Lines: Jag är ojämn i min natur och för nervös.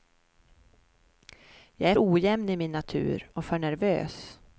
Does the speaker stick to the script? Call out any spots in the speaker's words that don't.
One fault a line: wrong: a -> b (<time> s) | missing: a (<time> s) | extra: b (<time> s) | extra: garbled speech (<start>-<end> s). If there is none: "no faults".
no faults